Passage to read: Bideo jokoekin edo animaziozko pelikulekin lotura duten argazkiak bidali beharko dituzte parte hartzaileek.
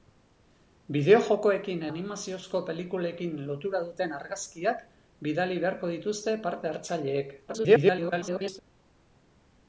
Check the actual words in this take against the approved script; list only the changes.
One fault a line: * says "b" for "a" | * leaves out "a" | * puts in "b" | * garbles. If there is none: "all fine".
* leaves out "edo"
* garbles